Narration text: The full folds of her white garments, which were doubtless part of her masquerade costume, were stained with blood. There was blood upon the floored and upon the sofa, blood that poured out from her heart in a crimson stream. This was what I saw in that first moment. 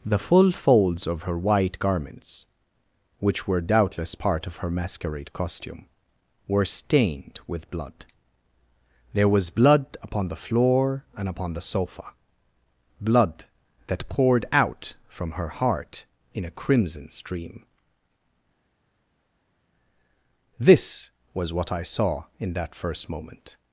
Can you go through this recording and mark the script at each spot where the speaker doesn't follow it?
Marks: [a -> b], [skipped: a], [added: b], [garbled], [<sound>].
The full folds of her white garments, which were doubtless part of her masquerade costume, were stained with blood. There was blood upon the [floored -> floor] and upon the sofa, blood that poured out from her heart in a crimson stream. This was what I saw in that first moment.